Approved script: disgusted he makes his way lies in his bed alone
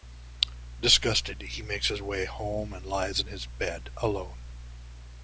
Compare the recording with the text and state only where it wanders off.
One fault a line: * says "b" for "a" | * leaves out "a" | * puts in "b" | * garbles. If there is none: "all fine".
* puts in "home and"